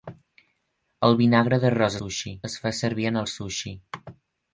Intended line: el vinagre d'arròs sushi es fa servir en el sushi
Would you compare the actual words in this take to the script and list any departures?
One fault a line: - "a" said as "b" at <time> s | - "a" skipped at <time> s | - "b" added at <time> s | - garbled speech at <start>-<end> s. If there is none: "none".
none